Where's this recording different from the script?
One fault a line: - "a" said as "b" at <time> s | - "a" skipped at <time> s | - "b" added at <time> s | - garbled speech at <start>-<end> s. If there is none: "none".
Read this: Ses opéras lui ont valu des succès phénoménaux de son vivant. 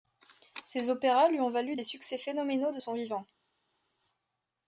none